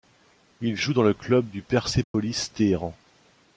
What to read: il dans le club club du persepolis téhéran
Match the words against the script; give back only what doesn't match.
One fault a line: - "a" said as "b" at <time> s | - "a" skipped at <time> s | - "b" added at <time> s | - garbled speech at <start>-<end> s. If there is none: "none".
- "joue" added at 0.8 s
- "club" skipped at 1.5 s